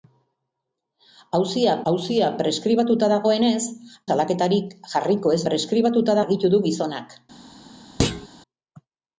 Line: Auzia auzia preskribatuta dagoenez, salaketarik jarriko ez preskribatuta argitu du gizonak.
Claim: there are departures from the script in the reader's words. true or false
false